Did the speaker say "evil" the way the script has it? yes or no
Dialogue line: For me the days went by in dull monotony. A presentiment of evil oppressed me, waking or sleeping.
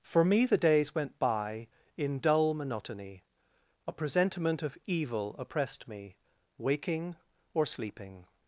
yes